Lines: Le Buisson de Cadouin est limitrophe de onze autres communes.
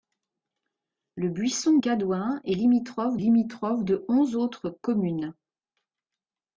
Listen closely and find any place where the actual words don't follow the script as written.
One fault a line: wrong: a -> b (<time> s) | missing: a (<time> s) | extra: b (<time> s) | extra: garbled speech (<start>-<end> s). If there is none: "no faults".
missing: de (1.8 s)
extra: limitrophe (3.2 s)